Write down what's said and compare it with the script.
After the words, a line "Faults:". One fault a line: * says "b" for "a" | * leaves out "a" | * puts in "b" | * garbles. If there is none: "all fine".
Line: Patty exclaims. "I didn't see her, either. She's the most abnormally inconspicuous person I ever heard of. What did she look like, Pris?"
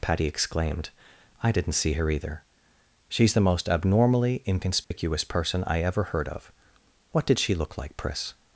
Patty exclaimed. "I didn't see her, either. She's the most abnormally inconspicuous person I ever heard of. What did she look like, Pris?"
Faults:
* says "exclaimed" for "exclaims"